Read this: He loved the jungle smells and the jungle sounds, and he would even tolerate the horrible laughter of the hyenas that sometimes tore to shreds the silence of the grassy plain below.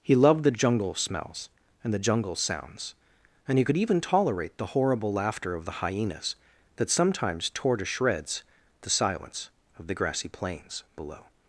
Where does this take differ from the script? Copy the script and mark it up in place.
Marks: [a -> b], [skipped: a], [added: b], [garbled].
He loved the jungle smells and the jungle sounds, and he [would -> could] even tolerate the horrible laughter of the hyenas that sometimes tore to shreds the silence of the grassy [plain -> plains] below.